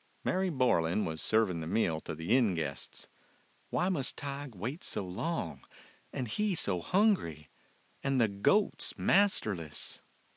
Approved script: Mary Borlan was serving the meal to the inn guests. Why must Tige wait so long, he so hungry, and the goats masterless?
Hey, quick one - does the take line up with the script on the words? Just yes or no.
no